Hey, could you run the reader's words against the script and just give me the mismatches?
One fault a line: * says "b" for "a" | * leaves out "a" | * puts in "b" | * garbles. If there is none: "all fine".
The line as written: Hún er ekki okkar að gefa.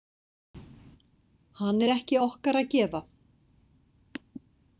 * says "Hann" for "Hún"